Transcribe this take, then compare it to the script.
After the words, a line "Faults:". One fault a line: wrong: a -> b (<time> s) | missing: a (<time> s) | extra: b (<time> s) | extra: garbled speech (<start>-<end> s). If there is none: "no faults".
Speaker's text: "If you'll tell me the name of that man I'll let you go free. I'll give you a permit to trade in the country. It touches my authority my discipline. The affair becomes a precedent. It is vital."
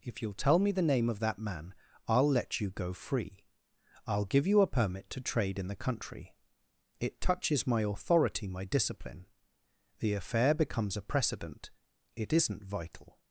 "If you'll tell me the name of that man I'll let you go free. I'll give you a permit to trade in the country. It touches my authority my discipline. The affair becomes a precedent. It isn't vital."
Faults:
wrong: is -> isn't (12.3 s)